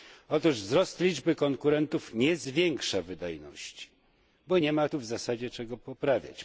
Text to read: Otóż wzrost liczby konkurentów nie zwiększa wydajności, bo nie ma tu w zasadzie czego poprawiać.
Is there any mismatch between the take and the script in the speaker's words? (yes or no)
no